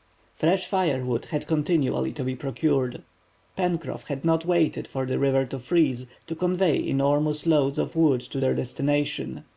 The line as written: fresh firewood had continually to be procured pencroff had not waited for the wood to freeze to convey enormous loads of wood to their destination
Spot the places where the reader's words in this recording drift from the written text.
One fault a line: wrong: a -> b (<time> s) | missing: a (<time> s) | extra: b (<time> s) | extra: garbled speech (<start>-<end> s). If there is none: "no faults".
wrong: wood -> river (5.2 s)